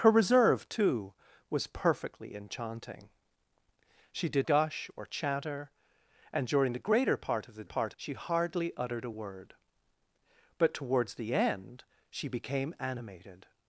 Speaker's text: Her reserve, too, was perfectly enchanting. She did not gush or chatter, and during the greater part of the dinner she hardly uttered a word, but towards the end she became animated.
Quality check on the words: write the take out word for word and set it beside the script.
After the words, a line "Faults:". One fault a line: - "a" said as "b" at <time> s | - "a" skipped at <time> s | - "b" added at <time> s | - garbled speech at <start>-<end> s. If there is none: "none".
Her reserve, too, was perfectly enchanting. She did gush or chatter, and during the greater part of the part she hardly uttered a word, but towards the end she became animated.
Faults:
- "not" skipped at 4.5 s
- "dinner" said as "part" at 7.6 s